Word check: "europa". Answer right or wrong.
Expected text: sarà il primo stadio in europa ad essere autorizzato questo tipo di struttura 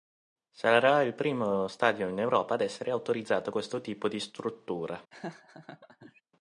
right